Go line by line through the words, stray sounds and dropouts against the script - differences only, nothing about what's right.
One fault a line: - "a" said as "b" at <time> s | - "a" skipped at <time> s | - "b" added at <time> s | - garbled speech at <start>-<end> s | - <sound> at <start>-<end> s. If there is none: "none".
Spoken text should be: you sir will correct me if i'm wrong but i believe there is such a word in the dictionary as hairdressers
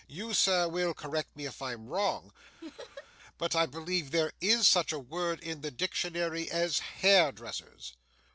- laugh at 2.6-3.1 s